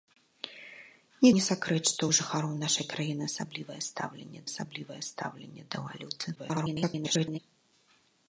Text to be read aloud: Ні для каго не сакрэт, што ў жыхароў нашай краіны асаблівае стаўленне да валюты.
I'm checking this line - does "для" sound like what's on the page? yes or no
no